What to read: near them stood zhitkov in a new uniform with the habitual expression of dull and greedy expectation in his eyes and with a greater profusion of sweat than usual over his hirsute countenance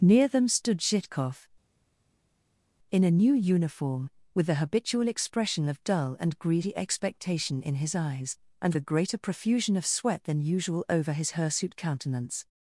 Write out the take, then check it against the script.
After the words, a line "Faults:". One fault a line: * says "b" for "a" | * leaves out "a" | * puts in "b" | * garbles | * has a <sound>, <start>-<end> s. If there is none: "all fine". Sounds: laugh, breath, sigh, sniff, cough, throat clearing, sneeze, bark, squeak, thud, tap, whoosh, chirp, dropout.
near them stood zhitkov in a new uniform with the habitual expression of dull and greedy expectation in his eyes and a greater profusion of sweat than usual over his hirsute countenance
Faults:
* leaves out "with"